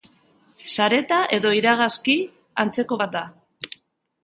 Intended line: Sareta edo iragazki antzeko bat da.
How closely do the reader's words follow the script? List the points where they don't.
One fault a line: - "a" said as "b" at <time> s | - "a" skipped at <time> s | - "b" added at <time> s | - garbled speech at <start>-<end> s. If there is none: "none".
none